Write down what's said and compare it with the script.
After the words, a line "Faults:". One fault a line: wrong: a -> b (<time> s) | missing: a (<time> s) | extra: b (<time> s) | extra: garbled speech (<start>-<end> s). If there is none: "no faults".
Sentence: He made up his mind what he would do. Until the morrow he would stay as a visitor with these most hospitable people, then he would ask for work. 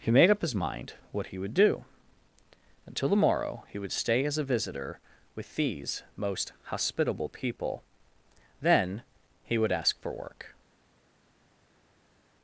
He made up his mind what he would do. Until the morrow he would stay as a visitor with these most hospitable people, then he would ask for work.
Faults:
no faults